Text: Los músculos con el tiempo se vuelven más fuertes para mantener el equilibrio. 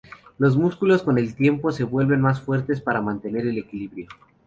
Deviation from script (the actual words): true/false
false